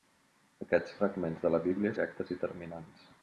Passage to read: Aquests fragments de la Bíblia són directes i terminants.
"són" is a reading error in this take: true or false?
true